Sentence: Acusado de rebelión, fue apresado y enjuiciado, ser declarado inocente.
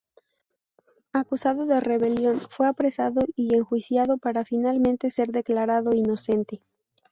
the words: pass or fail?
fail